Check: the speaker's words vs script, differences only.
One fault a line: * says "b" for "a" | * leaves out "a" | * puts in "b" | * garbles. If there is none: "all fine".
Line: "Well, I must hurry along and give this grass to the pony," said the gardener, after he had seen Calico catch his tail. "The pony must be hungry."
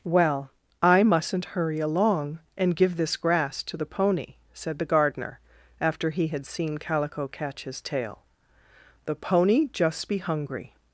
* says "mustn't" for "must"
* says "just" for "must"